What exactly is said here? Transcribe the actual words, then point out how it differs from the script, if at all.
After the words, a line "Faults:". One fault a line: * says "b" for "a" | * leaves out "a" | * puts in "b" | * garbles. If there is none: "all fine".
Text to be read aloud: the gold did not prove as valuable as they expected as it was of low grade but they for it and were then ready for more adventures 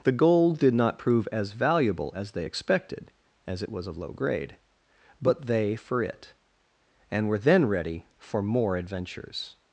the gold did not prove as valuable as they expected as it was of low grade but they for it and were then ready for more adventures
Faults:
all fine